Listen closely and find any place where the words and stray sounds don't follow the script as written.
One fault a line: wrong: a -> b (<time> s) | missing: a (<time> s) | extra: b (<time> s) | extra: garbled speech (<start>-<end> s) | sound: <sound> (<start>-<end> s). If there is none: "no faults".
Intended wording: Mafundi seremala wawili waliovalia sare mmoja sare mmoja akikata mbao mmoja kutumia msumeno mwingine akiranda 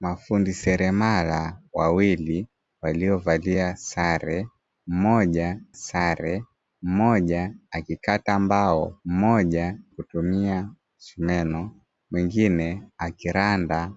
no faults